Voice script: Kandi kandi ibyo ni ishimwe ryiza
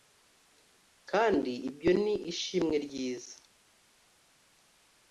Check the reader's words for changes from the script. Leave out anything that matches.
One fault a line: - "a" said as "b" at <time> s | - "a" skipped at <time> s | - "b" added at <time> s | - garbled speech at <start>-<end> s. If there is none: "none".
- "kandi" skipped at 1.5 s